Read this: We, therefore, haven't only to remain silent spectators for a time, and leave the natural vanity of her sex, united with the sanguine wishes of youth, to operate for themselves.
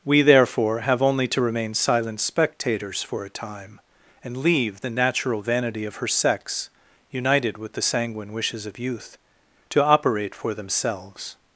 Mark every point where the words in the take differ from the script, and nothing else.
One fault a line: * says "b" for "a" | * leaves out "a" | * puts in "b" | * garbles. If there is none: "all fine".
* says "have" for "haven't"